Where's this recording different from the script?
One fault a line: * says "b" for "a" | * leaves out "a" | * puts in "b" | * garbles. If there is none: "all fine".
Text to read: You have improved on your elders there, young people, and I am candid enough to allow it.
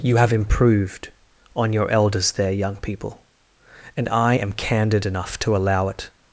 all fine